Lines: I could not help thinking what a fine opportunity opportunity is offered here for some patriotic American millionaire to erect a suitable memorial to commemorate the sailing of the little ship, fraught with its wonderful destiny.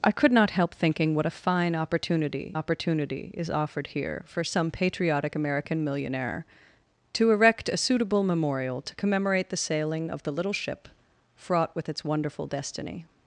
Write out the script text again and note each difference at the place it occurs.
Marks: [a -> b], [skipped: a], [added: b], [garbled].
I could not help thinking what a fine opportunity opportunity is offered here for some patriotic American millionaire to erect a suitable memorial to commemorate the sailing of the little ship, fraught with its wonderful destiny.